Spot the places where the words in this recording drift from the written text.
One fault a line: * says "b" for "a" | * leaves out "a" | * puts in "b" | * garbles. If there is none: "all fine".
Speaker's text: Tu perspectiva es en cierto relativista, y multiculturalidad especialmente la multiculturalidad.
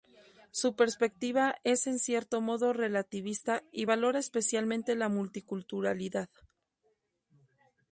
* says "Su" for "Tu"
* puts in "modo"
* says "valora" for "multiculturalidad"